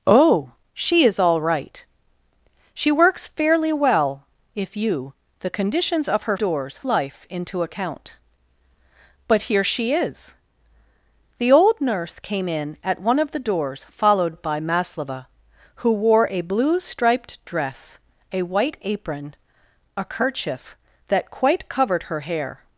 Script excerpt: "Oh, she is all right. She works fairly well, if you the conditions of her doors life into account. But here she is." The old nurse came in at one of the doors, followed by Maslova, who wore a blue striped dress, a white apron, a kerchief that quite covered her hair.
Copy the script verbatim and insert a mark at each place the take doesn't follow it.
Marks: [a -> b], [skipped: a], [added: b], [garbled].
"Oh, she is all right. She works fairly well, if you the conditions of her doors life into account. But here she is." The old nurse came in at one of the doors, followed by Maslova, who wore a blue striped dress, a white apron, a kerchief that quite covered her hair.